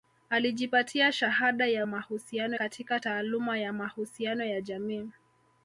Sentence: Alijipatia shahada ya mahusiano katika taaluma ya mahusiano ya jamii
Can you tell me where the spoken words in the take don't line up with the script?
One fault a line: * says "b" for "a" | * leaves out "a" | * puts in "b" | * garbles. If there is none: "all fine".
all fine